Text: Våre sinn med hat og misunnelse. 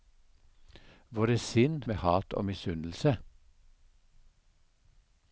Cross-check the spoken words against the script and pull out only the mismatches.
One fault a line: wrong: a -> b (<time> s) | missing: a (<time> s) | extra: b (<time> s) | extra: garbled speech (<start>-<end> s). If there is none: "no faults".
no faults